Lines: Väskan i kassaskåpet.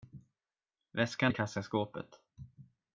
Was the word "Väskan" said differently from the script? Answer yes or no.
no